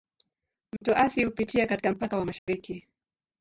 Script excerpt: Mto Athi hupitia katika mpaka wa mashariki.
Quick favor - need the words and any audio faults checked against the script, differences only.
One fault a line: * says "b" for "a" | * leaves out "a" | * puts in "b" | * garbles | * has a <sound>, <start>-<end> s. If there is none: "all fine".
* has a dropout, 0.8-0.8 s
* has a dropout, 2.4-2.5 s